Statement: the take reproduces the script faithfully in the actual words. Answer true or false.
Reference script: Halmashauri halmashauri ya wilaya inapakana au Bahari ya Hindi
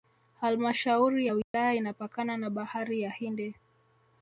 false